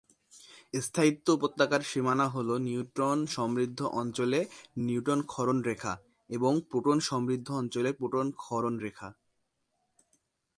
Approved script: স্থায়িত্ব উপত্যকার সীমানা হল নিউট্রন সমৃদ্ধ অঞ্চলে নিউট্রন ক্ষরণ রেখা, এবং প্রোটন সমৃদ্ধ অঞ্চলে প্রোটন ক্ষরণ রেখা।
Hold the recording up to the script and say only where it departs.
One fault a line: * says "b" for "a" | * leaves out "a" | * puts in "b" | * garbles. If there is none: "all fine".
all fine